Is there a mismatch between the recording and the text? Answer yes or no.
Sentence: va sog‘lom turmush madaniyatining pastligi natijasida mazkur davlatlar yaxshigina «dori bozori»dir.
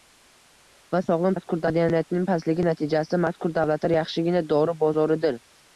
yes